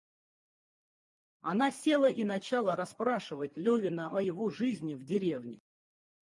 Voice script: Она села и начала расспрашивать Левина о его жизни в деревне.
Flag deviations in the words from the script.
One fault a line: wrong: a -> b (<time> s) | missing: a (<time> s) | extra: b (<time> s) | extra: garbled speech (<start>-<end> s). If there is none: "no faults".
no faults